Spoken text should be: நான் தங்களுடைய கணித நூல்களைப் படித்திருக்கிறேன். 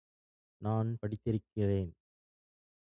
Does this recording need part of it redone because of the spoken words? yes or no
yes